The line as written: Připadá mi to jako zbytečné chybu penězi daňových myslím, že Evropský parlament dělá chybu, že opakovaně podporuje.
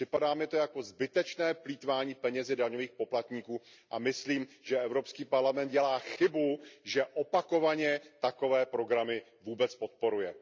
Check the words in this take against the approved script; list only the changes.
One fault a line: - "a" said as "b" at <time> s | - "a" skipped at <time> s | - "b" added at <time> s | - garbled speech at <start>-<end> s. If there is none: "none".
- "chybu" said as "plýtvání" at 1.5 s
- "poplatníků a" added at 2.9 s
- "takové programy vůbec" added at 8.2 s